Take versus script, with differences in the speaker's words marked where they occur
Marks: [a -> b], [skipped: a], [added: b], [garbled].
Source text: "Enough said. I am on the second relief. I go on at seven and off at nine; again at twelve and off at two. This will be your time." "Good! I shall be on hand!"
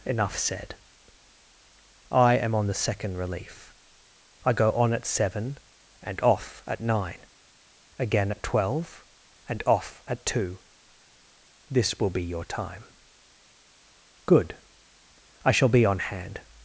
"Enough said. I am on the second relief. I go on at seven and off at nine; again at twelve and off at two. This will be your time." "Good! I shall be on hand!"